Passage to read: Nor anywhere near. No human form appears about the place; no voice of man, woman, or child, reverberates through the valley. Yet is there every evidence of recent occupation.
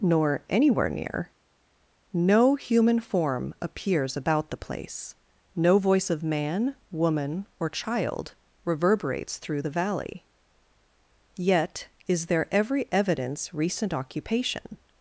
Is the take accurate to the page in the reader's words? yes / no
no